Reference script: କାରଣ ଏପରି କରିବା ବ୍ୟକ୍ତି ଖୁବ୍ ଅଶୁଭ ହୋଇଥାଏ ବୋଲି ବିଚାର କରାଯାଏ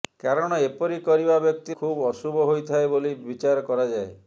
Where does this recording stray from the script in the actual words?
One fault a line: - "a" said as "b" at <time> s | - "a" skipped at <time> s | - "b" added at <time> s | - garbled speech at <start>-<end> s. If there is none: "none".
none